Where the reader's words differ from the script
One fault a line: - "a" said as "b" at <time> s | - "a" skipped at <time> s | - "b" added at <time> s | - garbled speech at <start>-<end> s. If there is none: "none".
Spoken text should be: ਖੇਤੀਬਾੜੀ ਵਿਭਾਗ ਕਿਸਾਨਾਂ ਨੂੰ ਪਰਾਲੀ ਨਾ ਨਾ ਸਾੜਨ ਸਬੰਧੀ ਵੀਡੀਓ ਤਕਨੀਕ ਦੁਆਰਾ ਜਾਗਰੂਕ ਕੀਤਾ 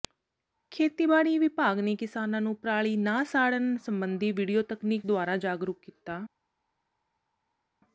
- "ਨੇ" added at 1.8 s
- "ਨਾ" skipped at 3.2 s